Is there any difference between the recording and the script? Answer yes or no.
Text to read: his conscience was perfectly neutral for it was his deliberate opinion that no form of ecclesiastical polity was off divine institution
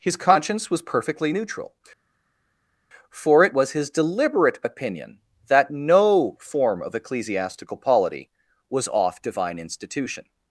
no